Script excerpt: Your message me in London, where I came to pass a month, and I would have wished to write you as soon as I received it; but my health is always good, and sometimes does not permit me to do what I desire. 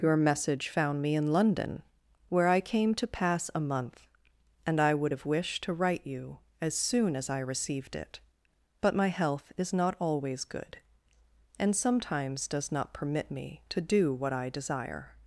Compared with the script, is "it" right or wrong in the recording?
right